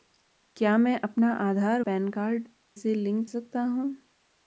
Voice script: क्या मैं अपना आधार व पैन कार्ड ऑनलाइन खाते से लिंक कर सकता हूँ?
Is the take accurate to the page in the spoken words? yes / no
no